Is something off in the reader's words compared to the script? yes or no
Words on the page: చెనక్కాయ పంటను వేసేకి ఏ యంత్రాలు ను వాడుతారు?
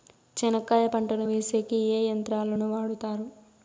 no